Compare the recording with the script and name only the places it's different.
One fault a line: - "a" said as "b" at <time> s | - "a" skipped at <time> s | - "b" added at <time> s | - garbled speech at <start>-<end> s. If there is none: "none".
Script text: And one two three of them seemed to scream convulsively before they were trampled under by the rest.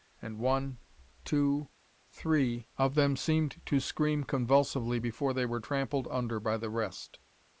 none